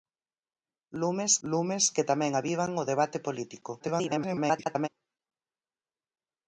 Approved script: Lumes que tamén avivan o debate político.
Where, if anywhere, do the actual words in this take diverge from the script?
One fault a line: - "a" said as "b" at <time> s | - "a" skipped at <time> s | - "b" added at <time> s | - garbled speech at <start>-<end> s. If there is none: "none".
- "lumes" added at 1.5 s
- garbled speech at 3.8-4.9 s